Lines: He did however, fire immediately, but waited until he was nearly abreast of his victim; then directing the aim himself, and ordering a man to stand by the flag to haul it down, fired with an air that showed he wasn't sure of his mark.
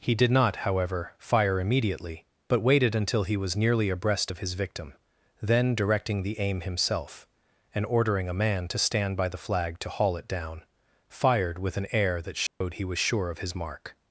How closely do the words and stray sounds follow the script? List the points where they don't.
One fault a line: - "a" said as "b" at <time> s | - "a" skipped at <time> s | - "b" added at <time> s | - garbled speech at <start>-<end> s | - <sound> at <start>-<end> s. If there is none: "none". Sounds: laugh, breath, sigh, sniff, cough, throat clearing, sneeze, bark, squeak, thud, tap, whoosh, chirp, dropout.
- "not" added at 0.3 s
- dropout at 12.5-12.6 s
- "wasn't" said as "was" at 12.8 s